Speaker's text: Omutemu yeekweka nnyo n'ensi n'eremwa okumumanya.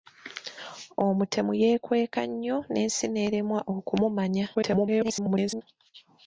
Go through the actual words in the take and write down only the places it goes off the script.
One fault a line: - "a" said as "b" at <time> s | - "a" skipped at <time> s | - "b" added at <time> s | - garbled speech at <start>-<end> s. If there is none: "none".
- garbled speech at 4.5-5.6 s